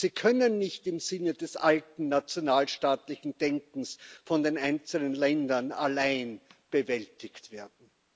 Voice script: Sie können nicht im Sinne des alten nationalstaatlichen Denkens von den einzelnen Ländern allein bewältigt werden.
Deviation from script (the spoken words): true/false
false